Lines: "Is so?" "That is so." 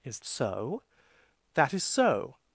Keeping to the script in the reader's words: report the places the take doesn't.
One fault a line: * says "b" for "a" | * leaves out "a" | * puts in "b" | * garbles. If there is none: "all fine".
all fine